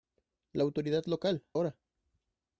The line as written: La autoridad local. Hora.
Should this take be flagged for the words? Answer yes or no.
no